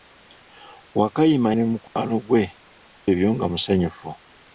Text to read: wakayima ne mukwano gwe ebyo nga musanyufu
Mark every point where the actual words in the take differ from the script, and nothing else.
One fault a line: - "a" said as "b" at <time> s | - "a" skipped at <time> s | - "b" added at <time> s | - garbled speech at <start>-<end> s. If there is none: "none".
none